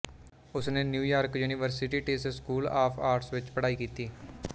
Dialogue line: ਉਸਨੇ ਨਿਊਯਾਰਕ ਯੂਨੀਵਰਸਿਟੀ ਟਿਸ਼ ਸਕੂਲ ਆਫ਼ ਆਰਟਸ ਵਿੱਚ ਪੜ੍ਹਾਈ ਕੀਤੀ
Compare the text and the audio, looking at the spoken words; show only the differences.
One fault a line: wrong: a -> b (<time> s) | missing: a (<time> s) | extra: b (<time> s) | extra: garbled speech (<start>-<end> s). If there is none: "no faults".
no faults